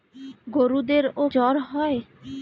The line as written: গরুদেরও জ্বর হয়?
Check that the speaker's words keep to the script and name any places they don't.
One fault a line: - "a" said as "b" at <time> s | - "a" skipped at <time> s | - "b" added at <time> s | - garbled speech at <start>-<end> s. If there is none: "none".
none